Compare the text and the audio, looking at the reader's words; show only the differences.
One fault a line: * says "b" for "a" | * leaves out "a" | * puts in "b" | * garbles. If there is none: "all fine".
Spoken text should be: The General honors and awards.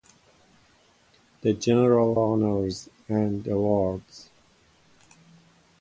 all fine